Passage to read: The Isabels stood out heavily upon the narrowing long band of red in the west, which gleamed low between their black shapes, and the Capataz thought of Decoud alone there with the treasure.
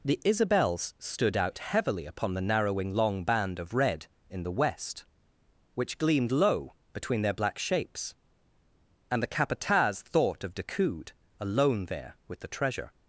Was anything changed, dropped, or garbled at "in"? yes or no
no